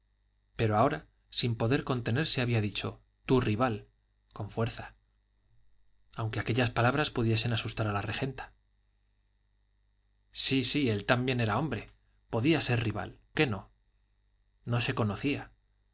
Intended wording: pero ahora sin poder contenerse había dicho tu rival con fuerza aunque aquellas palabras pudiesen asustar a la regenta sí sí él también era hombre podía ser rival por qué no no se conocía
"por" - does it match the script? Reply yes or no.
no